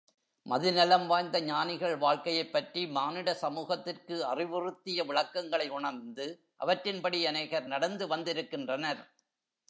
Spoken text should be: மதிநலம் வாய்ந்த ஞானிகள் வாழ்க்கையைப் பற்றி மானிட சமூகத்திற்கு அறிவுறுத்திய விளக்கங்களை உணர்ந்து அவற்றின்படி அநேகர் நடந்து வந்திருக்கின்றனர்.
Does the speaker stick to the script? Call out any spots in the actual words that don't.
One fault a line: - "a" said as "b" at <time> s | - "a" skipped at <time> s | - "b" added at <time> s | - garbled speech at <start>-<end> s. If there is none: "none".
none